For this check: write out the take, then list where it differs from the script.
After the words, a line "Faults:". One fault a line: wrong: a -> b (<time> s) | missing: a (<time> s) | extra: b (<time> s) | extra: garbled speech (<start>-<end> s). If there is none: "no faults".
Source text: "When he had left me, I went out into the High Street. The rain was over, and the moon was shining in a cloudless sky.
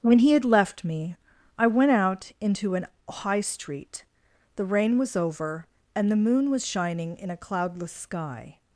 "When he had left me, I went out into an High Street. The rain was over, and the moon was shining in a cloudless sky.
Faults:
wrong: the -> an (2.8 s)